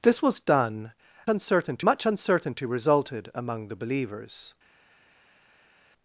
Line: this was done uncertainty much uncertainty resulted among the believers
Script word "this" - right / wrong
right